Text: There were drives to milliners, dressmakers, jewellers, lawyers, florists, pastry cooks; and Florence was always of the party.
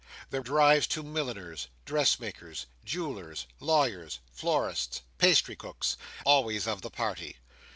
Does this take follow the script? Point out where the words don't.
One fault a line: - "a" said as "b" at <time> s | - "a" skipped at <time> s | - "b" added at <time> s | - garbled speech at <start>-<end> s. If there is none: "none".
- "were" skipped at 0.4 s
- "and Florence was" skipped at 6.0 s